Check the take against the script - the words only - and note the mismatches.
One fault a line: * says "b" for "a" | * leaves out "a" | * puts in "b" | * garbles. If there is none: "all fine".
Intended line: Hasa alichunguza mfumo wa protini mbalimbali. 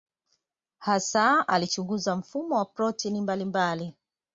all fine